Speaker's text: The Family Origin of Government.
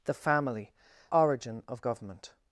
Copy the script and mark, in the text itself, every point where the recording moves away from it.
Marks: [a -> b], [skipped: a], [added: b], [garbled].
The Family Origin of Government.